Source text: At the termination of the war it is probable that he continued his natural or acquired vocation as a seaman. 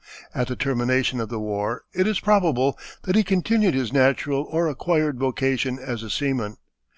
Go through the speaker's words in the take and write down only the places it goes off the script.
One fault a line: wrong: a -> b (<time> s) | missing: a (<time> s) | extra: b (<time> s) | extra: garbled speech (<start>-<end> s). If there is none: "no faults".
no faults